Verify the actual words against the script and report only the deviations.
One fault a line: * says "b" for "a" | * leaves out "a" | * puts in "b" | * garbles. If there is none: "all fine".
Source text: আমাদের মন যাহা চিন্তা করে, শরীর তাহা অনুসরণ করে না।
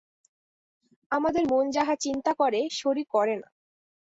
* leaves out "তাহা অনুসরণ"